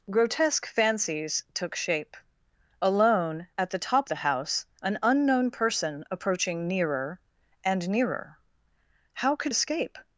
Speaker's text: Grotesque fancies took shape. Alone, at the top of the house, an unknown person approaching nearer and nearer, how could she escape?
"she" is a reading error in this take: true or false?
true